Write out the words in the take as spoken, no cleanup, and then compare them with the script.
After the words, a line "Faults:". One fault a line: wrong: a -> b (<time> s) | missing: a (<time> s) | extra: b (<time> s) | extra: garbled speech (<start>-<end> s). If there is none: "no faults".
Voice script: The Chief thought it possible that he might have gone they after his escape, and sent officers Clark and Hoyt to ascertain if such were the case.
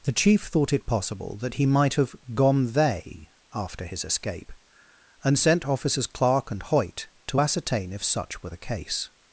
The Chief thought it possible that he might have gone they after his escape, and sent officers Clark and Hoyt to ascertain if such were the case.
Faults:
no faults